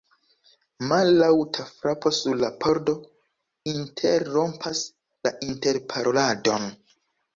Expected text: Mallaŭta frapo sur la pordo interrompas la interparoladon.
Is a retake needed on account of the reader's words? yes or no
no